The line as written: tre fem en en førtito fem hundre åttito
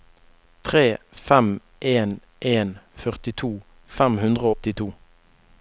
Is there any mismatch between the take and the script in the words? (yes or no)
no